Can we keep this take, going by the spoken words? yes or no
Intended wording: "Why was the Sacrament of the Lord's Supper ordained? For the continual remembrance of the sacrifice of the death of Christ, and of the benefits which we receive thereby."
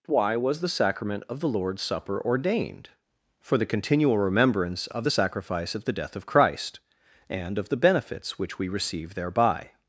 yes